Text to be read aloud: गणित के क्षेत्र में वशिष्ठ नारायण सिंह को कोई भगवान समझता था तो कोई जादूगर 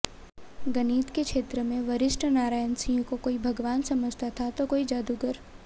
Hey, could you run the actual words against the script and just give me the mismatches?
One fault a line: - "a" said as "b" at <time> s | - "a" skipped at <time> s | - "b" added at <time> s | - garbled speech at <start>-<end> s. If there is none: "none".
none